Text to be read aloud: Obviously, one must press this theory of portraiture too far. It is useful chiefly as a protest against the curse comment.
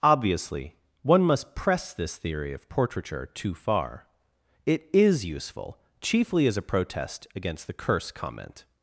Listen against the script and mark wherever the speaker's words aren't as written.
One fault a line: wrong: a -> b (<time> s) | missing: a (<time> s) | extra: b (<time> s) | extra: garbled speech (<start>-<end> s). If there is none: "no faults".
no faults